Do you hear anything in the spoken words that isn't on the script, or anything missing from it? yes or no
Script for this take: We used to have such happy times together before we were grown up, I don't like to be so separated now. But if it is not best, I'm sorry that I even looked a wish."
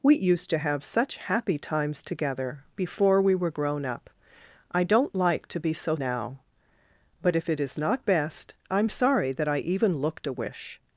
yes